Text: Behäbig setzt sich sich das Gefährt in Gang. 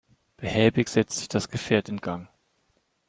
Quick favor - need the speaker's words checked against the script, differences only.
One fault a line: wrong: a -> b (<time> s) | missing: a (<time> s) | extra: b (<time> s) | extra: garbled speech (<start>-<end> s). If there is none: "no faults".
missing: sich (1.3 s)